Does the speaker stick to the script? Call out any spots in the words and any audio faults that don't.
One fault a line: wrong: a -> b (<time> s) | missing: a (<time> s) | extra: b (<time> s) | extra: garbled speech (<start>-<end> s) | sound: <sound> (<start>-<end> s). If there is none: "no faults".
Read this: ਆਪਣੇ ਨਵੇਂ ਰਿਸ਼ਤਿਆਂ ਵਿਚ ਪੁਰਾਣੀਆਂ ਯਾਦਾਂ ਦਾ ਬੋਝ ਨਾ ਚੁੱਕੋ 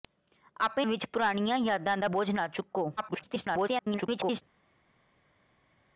missing: ਨਵੇਂ ਰਿਸ਼ਤਿਆਂ (0.8 s)
extra: garbled speech (3.0-4.4 s)